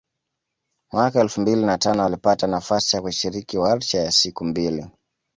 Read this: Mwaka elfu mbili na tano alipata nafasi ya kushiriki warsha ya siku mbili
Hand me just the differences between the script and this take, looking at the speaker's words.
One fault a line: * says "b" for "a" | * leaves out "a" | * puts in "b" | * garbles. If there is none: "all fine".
all fine